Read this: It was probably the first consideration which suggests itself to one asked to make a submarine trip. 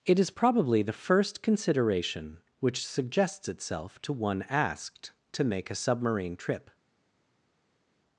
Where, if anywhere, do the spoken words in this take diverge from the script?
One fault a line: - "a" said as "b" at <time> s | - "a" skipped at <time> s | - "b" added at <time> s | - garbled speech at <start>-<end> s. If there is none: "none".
- "was" said as "is" at 0.2 s